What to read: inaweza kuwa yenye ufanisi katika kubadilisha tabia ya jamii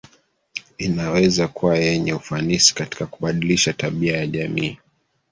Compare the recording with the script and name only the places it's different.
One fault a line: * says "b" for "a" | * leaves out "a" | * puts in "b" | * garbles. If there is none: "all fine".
all fine